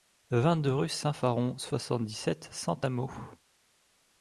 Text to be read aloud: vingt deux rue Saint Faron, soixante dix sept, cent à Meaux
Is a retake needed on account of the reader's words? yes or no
no